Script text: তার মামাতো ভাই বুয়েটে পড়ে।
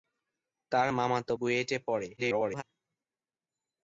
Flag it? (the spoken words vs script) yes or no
yes